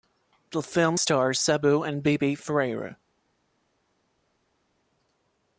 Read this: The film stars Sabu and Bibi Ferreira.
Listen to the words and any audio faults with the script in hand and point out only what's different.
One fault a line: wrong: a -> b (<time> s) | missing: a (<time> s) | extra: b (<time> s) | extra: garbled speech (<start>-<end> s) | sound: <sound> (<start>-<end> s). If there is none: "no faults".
no faults